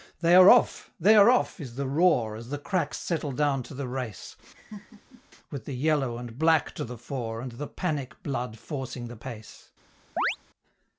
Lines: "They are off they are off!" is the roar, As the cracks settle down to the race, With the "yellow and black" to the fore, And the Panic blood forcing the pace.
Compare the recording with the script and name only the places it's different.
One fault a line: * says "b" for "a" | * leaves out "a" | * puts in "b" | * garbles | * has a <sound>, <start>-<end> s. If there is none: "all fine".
* has a laugh, 4.5-5.2 s
* has a chirp, 10.2-10.4 s